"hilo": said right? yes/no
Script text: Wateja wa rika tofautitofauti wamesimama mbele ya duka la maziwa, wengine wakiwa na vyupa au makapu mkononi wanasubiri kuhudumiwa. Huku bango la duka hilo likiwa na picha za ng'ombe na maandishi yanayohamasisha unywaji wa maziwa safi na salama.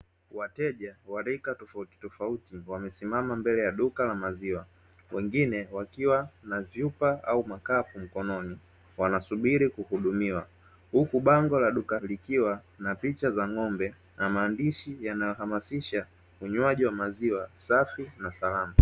no